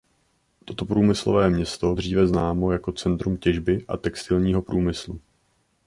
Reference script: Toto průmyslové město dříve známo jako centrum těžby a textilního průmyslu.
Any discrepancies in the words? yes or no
no